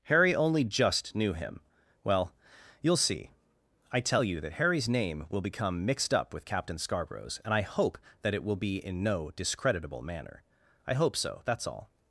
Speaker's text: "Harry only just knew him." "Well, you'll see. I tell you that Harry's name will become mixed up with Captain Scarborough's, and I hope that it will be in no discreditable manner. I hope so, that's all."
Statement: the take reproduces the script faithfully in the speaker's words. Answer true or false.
true